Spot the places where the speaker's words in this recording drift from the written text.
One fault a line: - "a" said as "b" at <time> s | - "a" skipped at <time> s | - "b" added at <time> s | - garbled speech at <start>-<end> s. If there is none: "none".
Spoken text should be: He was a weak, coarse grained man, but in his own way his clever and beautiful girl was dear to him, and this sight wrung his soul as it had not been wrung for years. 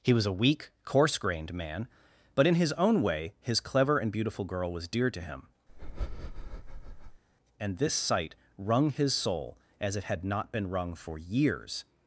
none